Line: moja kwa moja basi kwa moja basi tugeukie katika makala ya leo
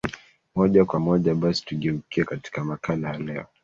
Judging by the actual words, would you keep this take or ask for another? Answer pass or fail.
fail